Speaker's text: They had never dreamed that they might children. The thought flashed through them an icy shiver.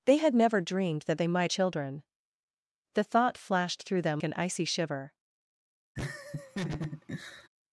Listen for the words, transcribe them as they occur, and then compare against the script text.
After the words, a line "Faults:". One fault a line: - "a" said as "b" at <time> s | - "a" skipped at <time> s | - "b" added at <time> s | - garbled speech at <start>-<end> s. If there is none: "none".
They had never dreamed that they might children. The thought flashed through them an icy shiver.
Faults:
none